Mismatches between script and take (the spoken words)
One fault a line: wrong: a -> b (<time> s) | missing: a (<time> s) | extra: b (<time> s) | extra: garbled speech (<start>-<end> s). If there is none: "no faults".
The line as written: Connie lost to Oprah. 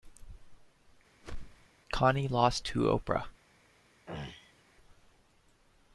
no faults